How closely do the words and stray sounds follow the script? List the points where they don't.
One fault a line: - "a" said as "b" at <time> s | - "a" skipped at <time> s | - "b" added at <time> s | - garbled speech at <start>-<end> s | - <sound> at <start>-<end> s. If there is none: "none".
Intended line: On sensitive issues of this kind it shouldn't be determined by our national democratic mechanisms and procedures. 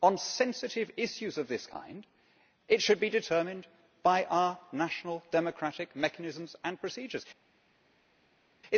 - "shouldn't" said as "should" at 2.8 s